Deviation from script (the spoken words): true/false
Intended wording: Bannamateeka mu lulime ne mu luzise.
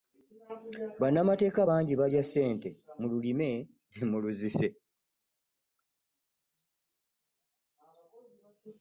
true